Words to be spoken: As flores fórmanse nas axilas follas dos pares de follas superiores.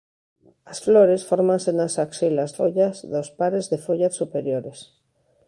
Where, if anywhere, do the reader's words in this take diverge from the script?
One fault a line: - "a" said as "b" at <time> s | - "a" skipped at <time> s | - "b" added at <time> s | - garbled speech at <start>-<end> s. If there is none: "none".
none